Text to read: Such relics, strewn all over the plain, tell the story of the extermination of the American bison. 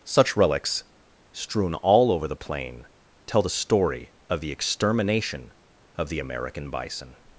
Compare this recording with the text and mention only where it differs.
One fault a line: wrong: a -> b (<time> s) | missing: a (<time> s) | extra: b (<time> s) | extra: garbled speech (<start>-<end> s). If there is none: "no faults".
no faults